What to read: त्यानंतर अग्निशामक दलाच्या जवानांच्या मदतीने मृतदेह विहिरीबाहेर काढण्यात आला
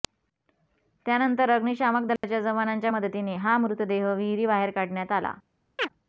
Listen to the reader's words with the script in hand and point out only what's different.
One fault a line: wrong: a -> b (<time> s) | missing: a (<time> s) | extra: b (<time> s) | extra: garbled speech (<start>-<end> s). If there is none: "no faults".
extra: हा (3.4 s)